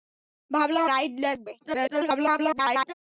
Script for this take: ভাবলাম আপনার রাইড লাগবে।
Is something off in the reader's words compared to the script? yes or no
yes